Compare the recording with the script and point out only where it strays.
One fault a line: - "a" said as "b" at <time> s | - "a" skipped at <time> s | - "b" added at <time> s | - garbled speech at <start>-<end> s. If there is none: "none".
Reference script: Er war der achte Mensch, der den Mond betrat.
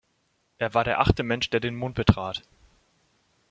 none